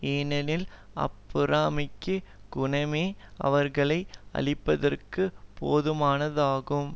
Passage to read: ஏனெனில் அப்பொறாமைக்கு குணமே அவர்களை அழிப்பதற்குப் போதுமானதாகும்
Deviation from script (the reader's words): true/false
false